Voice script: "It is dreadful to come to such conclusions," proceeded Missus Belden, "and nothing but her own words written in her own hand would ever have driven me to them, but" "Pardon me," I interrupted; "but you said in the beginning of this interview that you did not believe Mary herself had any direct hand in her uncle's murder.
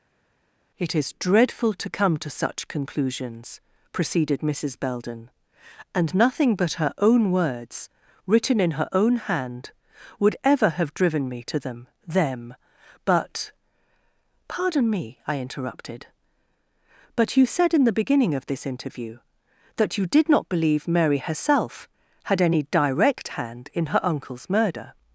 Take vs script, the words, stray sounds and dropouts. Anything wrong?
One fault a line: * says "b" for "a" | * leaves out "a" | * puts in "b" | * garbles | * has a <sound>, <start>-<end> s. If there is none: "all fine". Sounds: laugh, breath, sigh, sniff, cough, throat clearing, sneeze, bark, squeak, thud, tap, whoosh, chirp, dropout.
* puts in "them"